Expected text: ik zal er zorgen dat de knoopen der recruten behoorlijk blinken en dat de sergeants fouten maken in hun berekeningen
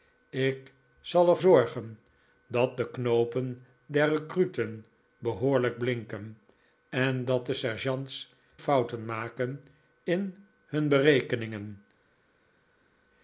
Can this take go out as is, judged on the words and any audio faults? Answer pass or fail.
pass